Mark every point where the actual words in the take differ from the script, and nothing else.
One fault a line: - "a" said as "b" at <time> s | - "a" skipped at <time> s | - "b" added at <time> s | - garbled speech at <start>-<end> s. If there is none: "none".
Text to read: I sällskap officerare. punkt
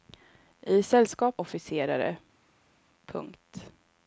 none